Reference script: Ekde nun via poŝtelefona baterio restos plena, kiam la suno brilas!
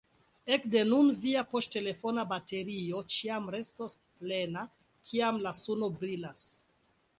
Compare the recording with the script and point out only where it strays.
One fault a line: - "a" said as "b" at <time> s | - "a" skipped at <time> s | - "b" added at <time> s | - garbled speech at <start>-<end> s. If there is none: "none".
- "ĉiam" added at 3.2 s